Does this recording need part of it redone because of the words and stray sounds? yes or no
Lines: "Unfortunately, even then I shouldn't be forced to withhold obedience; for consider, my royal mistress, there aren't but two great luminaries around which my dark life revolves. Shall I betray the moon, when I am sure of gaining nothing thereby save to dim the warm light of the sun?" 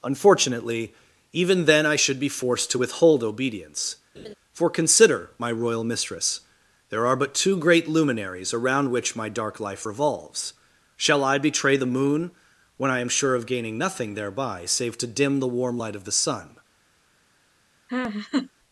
yes